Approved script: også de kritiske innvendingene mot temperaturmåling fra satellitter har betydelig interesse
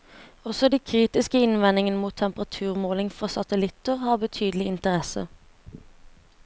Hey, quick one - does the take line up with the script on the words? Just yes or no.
yes